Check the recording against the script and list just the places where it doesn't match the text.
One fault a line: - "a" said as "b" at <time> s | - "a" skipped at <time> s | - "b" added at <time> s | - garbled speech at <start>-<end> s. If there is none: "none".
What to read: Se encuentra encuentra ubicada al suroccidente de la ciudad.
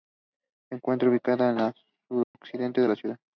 - "encuentra" skipped at 1.1 s